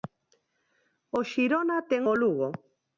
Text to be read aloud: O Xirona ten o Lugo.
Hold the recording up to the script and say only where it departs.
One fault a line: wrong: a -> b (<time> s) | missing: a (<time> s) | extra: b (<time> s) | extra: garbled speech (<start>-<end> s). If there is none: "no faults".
no faults